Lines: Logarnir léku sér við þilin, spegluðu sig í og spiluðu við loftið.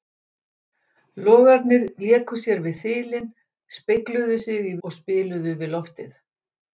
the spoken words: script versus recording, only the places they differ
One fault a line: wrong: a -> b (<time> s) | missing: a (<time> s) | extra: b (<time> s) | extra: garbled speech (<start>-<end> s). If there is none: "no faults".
no faults